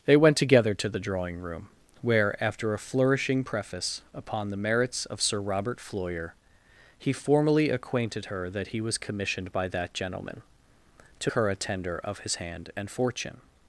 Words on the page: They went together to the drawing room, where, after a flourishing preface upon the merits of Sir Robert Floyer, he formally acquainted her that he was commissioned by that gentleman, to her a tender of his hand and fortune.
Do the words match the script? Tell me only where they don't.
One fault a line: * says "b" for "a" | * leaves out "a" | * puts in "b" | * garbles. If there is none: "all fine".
all fine